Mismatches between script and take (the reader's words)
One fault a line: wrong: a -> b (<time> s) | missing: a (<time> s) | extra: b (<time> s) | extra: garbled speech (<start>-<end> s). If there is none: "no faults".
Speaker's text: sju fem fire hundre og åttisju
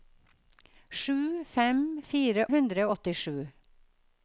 no faults